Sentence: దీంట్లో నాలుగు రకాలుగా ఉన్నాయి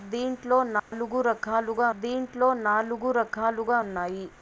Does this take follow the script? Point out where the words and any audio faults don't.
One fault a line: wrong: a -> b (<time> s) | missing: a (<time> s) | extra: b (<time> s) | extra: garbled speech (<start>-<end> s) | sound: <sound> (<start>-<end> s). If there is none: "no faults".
sound: dropout (0.8-0.9 s)
extra: దీంట్లో నాలుగు రకాలుగా (2.0 s)